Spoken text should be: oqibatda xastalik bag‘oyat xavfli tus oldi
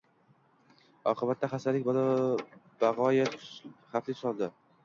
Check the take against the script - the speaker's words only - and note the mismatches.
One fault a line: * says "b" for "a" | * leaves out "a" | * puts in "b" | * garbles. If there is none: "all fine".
all fine